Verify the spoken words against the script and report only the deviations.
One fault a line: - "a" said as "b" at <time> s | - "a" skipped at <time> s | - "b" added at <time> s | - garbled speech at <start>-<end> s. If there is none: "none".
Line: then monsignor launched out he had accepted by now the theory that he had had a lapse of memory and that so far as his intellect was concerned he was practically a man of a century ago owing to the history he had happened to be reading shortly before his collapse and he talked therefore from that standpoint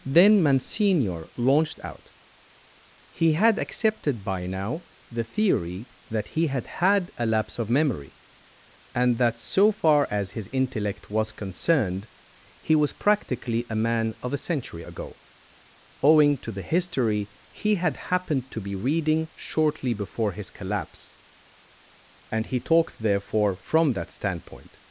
none